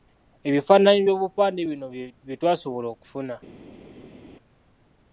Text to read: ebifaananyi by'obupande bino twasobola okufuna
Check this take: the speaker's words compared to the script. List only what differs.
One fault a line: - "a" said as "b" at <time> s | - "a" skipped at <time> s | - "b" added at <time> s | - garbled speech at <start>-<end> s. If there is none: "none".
- "bye" added at 2.3 s